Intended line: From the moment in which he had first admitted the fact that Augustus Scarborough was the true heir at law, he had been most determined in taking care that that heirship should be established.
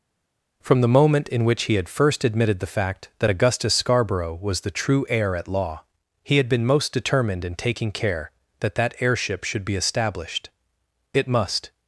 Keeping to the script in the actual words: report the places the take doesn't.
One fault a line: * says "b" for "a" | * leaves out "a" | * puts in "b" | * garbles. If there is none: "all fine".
* puts in "It must"